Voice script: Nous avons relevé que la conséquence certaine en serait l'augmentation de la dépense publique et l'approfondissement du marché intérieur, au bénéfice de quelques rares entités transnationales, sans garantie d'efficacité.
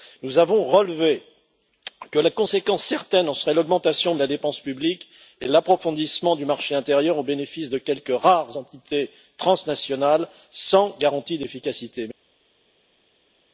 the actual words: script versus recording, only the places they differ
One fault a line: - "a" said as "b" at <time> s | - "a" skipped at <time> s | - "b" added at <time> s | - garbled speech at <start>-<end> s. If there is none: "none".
none